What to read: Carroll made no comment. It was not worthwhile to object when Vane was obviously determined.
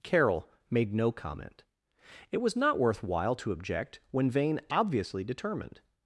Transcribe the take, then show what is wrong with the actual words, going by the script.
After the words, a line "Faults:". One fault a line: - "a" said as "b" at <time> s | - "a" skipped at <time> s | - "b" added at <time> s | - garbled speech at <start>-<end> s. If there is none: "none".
Carroll made no comment. It was not worthwhile to object when Vane obviously determined.
Faults:
- "was" skipped at 4.6 s